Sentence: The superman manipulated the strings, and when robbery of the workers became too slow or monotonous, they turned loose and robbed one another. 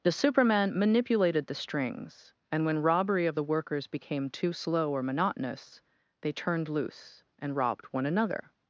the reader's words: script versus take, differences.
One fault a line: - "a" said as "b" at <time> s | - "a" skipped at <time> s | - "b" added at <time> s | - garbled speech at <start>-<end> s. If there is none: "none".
none